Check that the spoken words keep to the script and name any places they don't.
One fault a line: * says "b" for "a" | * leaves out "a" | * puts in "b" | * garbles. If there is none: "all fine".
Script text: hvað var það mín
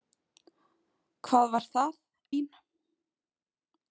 all fine